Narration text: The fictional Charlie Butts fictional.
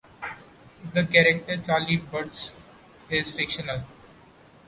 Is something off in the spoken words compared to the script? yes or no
yes